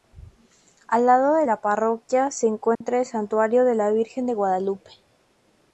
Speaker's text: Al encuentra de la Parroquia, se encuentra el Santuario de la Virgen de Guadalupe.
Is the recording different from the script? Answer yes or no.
yes